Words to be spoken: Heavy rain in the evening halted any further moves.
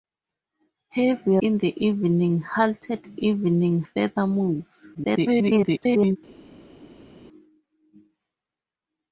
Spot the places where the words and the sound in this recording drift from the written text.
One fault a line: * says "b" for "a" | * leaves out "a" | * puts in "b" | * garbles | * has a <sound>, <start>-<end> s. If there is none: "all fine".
* leaves out "rain"
* says "evening" for "any"
* garbles